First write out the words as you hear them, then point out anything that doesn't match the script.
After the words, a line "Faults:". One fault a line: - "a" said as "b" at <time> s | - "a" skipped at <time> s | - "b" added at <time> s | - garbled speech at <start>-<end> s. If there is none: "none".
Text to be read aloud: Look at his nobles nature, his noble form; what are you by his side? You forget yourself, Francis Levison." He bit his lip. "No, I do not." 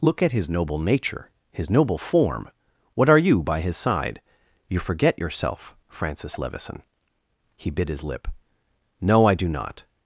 Look at his noble nature, his noble form; what are you by his side? You forget yourself, Francis Levison." He bit his lip. "No, I do not."
Faults:
- "nobles" said as "noble" at 0.5 s